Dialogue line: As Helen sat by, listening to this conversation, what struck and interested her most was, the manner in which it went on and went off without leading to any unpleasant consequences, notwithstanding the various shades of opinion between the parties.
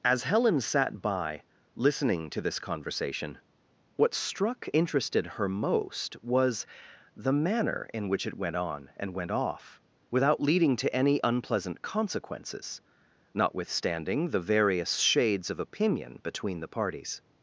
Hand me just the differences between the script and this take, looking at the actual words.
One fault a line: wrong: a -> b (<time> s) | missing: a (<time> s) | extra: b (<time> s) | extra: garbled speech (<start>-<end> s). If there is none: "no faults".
missing: and (4.7 s)